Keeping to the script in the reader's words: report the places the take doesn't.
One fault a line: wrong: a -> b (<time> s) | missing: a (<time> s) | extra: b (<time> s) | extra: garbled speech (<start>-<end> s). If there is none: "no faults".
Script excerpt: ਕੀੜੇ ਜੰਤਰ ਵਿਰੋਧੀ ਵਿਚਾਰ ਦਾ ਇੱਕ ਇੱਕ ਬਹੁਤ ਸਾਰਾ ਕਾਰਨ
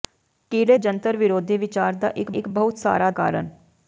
no faults